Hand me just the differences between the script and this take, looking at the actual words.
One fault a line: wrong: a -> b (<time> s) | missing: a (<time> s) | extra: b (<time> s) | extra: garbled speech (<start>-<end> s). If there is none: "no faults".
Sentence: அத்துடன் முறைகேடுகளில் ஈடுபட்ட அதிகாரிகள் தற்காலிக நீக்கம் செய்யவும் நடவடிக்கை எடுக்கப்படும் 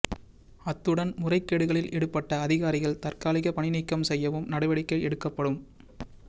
extra: பணி (3.5 s)